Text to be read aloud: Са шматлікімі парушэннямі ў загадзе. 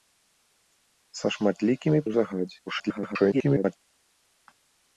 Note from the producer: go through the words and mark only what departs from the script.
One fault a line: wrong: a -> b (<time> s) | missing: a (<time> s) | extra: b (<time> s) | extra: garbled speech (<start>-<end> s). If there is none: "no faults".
missing: парушэннямі (2.0 s)
extra: garbled speech (2.7-3.8 s)